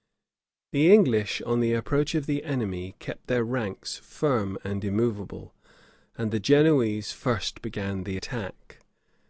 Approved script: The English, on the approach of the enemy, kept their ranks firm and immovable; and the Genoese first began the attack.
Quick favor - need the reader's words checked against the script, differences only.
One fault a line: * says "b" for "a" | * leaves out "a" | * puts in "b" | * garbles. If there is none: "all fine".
all fine